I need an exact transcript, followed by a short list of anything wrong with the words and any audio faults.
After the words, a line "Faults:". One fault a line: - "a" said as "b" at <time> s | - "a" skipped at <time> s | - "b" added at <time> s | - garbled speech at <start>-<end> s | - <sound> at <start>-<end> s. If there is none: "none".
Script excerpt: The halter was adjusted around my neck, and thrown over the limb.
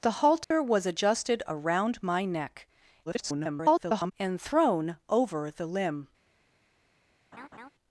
The halter was adjusted around my neck, [garbled] and thrown over the limb.
Faults:
- dropout at 0.4-0.5 s
- garbled speech at 3.1-4.1 s
- laugh at 7.3-7.7 s